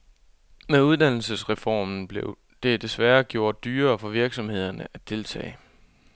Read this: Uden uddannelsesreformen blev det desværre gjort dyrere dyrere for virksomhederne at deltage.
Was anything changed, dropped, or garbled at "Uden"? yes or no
yes